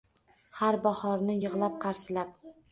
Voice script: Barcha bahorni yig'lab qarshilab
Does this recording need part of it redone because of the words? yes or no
yes